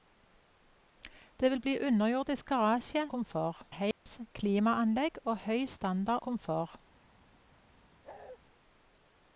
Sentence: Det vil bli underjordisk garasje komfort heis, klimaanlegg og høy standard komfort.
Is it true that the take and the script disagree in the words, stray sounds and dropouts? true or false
true